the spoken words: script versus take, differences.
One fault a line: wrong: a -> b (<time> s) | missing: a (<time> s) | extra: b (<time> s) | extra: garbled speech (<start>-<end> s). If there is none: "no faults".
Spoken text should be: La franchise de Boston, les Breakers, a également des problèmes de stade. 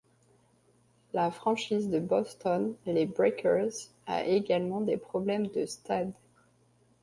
no faults